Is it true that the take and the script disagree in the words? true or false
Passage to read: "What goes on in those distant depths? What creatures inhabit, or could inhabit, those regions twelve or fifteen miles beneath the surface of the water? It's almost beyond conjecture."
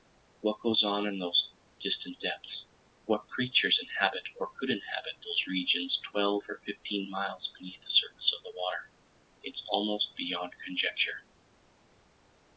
false